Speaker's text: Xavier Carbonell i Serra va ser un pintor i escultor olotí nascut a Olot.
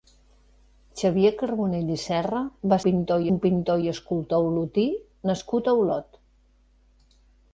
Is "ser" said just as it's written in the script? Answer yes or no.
no